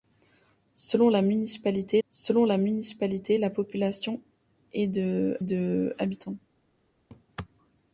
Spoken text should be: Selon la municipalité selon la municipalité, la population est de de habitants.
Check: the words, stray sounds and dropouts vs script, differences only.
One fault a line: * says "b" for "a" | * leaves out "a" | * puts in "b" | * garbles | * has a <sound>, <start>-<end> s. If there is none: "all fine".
* has a laugh, 7.1-7.3 s